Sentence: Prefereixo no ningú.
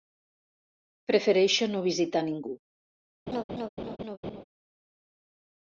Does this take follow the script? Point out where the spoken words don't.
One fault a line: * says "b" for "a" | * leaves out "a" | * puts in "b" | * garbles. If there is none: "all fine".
* puts in "visitar"